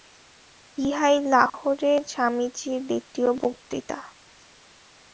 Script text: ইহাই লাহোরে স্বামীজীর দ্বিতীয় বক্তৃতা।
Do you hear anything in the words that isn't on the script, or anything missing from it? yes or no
no